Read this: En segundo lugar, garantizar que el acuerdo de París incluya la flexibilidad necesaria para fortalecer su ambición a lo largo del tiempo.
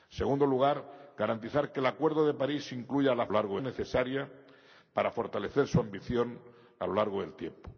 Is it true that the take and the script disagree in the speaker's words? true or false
true